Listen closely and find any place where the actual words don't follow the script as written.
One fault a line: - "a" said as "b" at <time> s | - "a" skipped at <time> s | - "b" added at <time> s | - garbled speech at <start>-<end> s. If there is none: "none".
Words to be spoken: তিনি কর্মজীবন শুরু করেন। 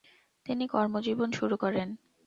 none